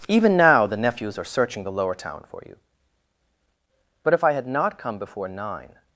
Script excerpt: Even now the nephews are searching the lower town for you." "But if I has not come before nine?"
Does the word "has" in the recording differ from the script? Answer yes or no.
yes